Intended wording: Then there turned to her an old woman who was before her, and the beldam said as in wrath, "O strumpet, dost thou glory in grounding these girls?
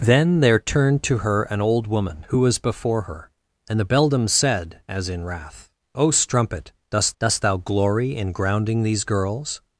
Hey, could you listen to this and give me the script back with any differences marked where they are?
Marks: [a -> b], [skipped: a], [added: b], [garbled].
Then there turned to her an old woman who was before her, and the beldam said as in wrath, "O strumpet, dost [added: dost] thou glory in grounding these girls?